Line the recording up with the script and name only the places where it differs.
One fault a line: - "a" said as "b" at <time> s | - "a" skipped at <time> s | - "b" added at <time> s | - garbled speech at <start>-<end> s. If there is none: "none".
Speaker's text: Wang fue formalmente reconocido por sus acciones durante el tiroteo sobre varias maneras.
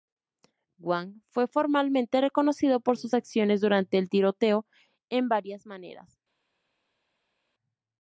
- "sobre" said as "en" at 5.1 s